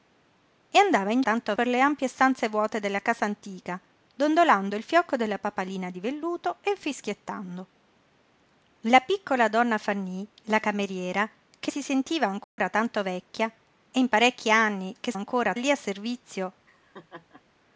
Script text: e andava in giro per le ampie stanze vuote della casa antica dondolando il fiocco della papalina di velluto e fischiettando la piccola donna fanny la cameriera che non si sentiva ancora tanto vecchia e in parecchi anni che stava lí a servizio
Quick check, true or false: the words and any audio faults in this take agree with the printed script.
false